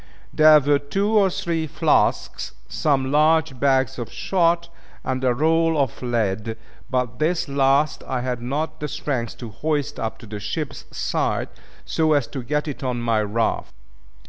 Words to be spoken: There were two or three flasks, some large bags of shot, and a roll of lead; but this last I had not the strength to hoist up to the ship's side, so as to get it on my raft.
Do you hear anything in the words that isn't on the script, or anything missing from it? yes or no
no